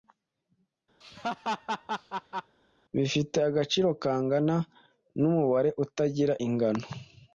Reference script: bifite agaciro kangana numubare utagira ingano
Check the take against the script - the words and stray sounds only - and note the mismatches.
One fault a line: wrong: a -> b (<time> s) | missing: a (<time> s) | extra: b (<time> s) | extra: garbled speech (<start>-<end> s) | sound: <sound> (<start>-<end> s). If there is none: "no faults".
sound: laugh (1.0-2.6 s)